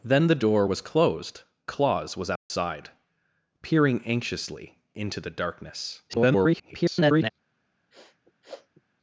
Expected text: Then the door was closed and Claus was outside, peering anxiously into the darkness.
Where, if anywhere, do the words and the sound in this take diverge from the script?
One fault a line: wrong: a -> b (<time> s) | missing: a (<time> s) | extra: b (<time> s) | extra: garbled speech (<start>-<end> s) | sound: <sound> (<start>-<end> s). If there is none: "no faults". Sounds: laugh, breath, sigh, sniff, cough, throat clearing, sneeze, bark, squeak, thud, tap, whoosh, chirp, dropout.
missing: and (1.4 s)
sound: dropout (2.4-2.5 s)
extra: garbled speech (6.1-7.3 s)
sound: sniff (7.9-8.8 s)